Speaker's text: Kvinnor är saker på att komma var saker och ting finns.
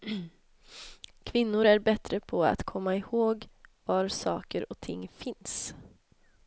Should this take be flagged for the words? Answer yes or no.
yes